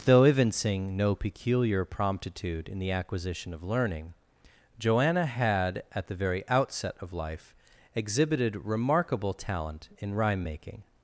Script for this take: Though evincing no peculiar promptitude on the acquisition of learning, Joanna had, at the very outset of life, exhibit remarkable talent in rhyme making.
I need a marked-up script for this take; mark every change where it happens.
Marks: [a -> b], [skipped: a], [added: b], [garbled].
Though evincing no peculiar promptitude [on -> in] the acquisition of learning, Joanna had, at the very outset of life, [exhibit -> exhibited] remarkable talent in rhyme making.